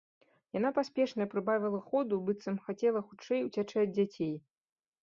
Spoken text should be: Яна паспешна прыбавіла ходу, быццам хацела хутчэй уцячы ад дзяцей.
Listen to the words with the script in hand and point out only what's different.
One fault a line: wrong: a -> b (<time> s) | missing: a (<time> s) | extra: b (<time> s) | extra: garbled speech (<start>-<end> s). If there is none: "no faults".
no faults